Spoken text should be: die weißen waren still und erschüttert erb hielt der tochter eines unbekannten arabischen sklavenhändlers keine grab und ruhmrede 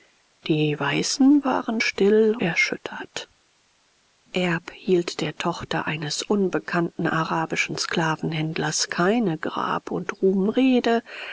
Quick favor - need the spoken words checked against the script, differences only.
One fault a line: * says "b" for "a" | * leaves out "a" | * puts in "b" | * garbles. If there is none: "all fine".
* leaves out "und"